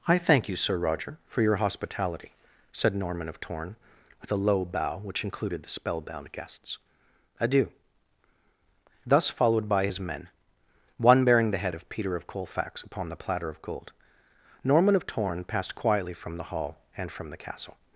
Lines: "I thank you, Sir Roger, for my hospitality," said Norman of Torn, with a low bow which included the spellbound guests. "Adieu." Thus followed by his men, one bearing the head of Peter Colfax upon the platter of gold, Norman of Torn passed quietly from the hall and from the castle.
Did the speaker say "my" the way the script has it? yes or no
no